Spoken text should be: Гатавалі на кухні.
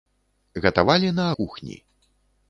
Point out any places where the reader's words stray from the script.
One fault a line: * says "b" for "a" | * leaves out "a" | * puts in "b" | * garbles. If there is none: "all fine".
all fine